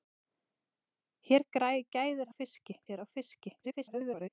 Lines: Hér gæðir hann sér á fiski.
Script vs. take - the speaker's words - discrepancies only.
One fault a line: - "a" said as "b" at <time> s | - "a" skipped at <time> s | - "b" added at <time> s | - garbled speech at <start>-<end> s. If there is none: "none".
- "hann" said as "fiski" at 2.4 s
- garbled speech at 3.6-4.3 s